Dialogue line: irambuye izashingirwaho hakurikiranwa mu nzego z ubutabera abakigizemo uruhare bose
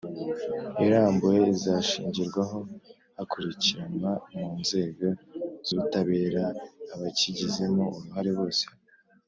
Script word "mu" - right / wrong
right